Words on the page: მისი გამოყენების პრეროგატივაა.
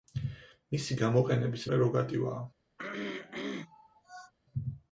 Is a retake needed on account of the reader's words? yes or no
no